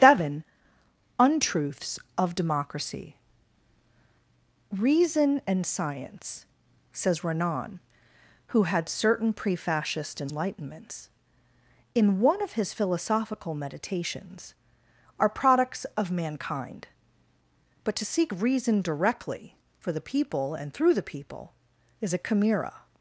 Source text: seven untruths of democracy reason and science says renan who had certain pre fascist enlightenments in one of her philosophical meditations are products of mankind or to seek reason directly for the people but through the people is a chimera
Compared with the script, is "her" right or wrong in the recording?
wrong